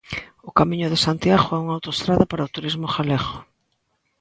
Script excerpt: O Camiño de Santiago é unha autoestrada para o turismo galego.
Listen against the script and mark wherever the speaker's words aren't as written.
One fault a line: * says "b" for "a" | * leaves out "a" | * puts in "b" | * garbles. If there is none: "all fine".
all fine